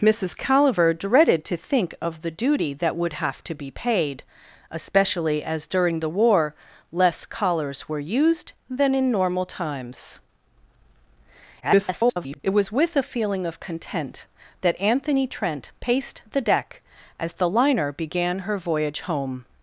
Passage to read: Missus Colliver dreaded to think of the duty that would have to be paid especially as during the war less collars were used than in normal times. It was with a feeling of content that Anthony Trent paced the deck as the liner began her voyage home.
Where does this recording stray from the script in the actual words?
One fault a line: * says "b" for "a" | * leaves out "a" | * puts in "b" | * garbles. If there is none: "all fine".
* garbles